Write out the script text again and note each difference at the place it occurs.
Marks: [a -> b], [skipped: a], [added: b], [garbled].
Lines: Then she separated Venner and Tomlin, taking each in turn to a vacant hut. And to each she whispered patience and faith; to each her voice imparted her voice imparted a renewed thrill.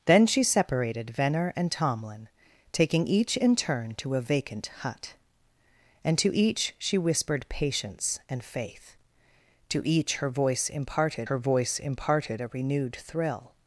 Then she separated Venner and Tomlin, taking each in turn to a vacant hut. And to each she whispered patience and faith; to each her voice imparted her voice imparted a renewed thrill.